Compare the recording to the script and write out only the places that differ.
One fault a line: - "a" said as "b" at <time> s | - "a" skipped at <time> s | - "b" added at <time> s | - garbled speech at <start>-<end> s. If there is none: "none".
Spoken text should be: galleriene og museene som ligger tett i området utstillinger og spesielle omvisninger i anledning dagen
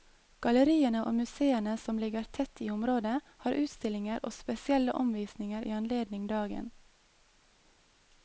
- "har" added at 3.4 s